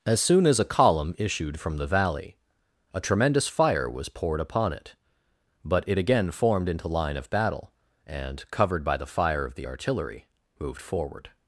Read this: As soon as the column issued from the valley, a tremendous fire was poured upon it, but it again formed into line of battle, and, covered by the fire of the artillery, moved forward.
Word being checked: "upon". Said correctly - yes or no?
yes